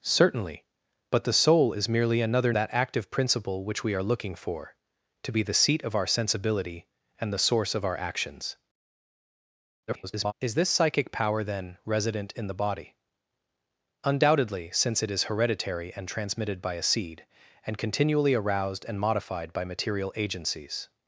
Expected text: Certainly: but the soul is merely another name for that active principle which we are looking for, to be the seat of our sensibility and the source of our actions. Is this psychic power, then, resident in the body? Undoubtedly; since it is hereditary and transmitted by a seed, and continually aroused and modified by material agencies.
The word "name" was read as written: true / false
false